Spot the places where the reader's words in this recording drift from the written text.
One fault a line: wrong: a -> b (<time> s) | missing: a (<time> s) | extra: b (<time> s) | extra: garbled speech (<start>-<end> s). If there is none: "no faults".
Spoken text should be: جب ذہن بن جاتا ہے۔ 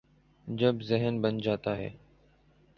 no faults